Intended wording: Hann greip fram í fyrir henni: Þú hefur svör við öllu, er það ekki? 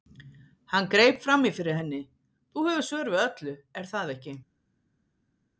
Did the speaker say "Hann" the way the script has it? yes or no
yes